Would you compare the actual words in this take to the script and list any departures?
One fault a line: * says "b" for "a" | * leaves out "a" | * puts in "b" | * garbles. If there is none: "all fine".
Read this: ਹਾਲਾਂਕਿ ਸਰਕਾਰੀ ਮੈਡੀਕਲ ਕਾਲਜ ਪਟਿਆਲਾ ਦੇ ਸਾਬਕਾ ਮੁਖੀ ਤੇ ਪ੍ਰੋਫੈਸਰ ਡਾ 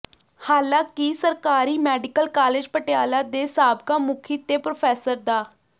all fine